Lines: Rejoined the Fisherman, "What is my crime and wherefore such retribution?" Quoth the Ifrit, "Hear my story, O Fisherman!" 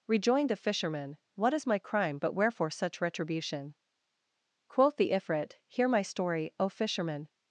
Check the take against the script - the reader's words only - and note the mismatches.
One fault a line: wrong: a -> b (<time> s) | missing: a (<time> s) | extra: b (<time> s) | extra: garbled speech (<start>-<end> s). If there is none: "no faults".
wrong: and -> but (2.2 s)